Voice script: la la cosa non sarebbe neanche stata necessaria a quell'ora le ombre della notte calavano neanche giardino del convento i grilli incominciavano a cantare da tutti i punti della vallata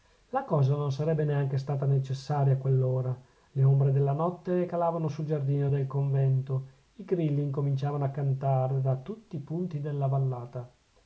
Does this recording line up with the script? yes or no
no